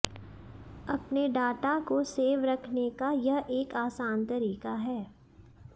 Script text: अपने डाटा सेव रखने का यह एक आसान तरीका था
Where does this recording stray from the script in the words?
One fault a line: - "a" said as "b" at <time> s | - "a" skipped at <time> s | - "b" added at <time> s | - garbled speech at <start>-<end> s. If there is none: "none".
- "को" added at 1.8 s
- "था" said as "है" at 4.8 s